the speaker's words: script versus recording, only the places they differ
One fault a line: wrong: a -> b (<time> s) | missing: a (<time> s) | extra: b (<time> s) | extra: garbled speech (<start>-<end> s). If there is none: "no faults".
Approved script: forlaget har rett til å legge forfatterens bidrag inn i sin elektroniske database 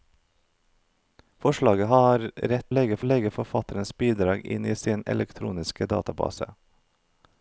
wrong: til -> legge (2.7 s)